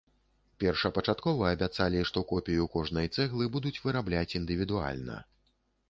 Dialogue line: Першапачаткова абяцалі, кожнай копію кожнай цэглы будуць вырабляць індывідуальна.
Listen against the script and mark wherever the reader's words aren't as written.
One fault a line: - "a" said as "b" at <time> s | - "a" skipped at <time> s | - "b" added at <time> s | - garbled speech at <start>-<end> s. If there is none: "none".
- "кожнай" said as "што" at 2.1 s